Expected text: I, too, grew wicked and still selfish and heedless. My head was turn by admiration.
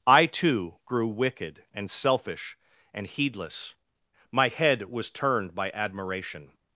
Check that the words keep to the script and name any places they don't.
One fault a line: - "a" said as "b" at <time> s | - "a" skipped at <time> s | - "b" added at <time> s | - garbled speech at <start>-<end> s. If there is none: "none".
- "still" skipped at 1.9 s
- "turn" said as "turned" at 5.1 s